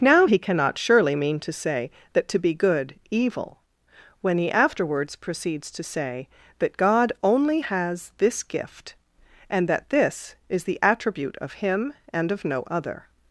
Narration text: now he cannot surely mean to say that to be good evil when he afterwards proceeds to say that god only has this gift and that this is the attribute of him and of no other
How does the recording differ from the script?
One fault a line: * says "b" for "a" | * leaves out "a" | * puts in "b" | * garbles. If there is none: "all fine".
all fine